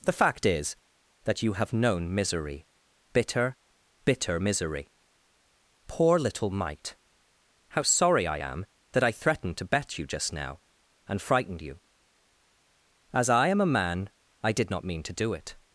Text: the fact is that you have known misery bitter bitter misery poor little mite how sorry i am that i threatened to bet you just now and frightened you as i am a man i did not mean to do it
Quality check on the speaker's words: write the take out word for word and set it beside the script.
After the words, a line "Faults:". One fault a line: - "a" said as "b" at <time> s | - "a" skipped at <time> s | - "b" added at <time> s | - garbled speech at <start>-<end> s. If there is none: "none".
the fact is that you have known misery bitter bitter misery poor little mite how sorry i am that i threatened to bet you just now and frightened you as i am a man i did not mean to do it
Faults:
none